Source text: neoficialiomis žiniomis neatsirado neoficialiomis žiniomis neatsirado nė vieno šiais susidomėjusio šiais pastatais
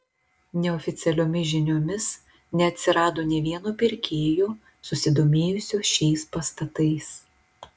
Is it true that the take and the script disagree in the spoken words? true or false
true